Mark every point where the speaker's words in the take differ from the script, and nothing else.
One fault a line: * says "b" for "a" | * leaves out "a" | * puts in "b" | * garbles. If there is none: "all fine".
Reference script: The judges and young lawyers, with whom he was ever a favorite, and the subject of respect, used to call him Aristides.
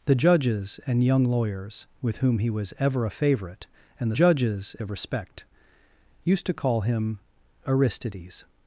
* says "judges" for "subject"